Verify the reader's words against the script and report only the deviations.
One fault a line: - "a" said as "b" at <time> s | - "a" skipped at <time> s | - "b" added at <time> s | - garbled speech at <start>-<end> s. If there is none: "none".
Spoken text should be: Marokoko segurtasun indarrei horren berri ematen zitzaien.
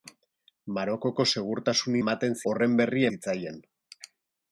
- "indarrei" said as "ematen" at 2.0 s
- "ematen" skipped at 3.1 s